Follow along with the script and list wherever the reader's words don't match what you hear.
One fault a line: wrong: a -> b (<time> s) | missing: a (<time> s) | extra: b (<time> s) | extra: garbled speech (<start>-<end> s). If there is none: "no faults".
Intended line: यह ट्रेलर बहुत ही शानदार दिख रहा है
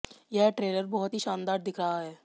no faults